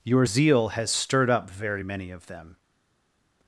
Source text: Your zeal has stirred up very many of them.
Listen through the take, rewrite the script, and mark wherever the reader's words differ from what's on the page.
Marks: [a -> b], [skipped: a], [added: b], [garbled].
Your zeal has stirred up very many of them.